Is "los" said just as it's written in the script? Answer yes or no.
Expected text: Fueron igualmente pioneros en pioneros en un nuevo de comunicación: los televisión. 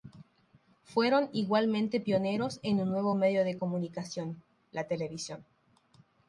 no